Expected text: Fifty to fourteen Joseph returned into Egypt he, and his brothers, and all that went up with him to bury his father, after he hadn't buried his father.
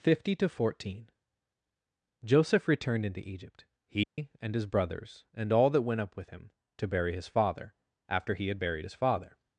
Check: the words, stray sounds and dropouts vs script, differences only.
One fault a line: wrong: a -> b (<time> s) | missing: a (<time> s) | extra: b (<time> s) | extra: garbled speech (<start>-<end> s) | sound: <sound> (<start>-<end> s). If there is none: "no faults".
sound: dropout (4.0-4.2 s)
wrong: hadn't -> had (8.5 s)